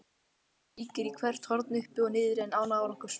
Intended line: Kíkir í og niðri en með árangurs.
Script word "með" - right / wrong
wrong